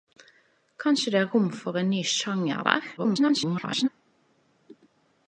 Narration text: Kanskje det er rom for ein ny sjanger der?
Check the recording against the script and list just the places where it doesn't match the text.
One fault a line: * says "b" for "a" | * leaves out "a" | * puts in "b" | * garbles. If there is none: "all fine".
* garbles